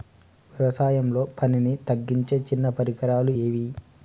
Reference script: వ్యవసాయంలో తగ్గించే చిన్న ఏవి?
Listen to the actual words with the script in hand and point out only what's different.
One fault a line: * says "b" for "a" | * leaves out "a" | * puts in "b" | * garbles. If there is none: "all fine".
* puts in "పనిని"
* puts in "పరికరాలు"